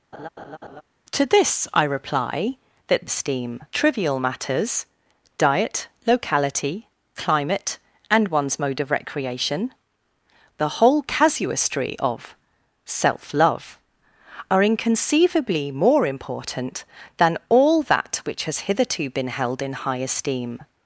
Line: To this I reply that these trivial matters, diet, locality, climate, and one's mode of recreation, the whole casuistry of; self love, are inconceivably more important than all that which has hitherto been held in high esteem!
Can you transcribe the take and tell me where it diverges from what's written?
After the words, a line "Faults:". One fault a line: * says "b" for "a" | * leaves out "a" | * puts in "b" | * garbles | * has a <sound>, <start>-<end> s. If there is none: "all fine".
To this I reply that esteem trivial matters, diet, locality, climate, and one's mode of recreation, the whole casuistry of; self love, are inconceivably more important than all that which has hitherto been held in high esteem!
Faults:
* has a laugh, 0.1-0.8 s
* says "esteem" for "these"